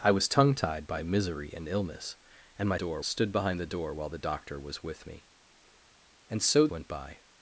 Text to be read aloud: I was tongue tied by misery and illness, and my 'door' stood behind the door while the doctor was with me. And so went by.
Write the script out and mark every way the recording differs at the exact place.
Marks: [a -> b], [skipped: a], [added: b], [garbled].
I was tongue tied by misery and illness, and my 'door' stood behind the door while the doctor was with me. And so went by.